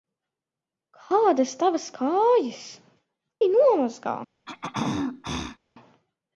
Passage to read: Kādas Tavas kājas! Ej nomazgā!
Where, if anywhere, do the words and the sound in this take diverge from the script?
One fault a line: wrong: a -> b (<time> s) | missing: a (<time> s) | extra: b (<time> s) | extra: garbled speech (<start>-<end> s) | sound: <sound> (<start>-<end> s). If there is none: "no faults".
sound: throat clearing (4.5-5.6 s)